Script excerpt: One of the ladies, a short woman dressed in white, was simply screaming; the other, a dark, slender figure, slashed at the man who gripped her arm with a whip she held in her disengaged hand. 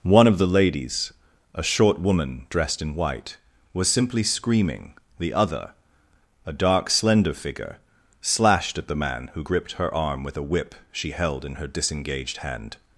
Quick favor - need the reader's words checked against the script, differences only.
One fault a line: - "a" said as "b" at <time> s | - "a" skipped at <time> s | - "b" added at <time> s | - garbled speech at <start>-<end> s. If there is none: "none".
none